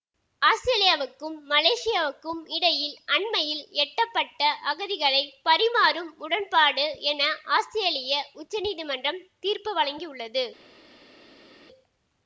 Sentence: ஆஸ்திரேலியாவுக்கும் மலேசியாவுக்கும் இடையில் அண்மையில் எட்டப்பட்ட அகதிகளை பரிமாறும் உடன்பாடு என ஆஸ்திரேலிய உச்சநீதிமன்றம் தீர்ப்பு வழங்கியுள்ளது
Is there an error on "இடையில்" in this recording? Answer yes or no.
no